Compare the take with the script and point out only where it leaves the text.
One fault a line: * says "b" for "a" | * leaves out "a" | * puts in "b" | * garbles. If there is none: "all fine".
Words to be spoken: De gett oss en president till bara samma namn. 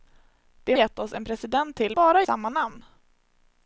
all fine